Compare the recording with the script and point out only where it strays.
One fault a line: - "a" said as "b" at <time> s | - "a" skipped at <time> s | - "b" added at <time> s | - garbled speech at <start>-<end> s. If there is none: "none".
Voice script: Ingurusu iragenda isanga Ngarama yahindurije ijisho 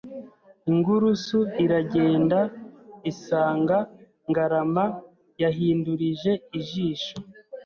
none